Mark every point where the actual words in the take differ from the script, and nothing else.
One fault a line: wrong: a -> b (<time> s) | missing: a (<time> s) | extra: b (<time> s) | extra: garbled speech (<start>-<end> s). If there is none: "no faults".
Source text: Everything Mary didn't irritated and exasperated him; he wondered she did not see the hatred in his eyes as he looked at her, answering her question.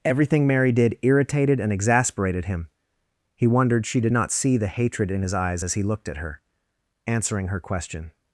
wrong: didn't -> did (0.7 s)